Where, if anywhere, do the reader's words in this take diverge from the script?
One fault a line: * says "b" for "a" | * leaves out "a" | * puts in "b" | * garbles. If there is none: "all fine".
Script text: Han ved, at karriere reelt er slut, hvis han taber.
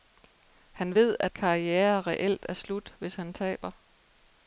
all fine